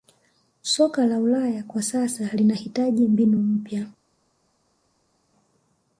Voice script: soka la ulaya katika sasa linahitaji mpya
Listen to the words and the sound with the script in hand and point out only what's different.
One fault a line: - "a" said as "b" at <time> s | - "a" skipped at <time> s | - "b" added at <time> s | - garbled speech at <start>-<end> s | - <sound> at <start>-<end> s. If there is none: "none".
- "katika" said as "kwa" at 1.6 s
- "mbinu" added at 3.1 s